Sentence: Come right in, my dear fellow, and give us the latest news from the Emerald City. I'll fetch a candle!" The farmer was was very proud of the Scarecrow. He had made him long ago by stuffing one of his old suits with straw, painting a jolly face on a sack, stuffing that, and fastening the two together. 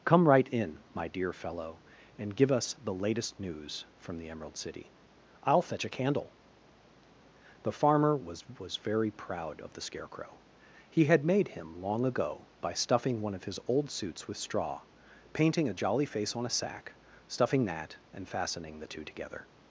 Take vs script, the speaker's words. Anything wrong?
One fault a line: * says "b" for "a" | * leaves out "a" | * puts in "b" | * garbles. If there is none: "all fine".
all fine